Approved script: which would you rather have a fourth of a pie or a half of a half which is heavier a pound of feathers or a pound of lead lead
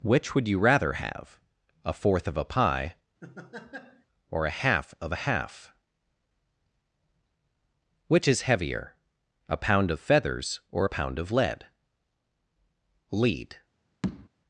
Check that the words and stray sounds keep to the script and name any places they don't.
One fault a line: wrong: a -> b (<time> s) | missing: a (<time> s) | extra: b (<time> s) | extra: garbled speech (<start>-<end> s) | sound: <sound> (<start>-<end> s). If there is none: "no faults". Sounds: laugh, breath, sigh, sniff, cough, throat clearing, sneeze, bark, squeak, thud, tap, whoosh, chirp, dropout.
sound: laugh (3.2-4.1 s)
sound: tap (14.0-14.3 s)